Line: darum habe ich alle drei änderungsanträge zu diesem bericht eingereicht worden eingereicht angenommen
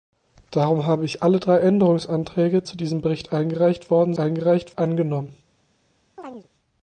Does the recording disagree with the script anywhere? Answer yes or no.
no